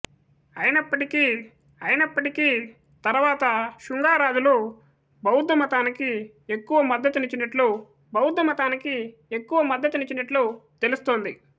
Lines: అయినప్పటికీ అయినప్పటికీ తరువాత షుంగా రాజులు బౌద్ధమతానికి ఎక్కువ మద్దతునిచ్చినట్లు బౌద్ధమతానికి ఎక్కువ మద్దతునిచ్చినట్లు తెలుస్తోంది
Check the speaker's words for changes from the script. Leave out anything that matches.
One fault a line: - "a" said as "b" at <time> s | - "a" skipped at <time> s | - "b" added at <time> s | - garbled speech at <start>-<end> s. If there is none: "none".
none